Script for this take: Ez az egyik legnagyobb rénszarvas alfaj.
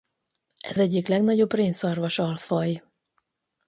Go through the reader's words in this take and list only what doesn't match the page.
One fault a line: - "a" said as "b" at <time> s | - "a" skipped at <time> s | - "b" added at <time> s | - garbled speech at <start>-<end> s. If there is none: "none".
- "az" skipped at 0.8 s